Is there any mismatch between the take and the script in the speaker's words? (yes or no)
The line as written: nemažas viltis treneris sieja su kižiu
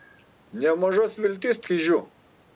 yes